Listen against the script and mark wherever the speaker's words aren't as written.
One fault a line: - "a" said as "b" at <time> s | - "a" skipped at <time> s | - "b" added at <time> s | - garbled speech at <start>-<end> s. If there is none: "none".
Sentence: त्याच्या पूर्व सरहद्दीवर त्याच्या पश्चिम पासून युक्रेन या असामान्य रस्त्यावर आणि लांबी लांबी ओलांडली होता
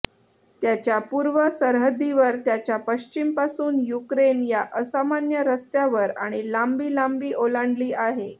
- "होता" said as "आहे" at 7.9 s